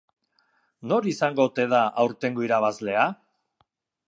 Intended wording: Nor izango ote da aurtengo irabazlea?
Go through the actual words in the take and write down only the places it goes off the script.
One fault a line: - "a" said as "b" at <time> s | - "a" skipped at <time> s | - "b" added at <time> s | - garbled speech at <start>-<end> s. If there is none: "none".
none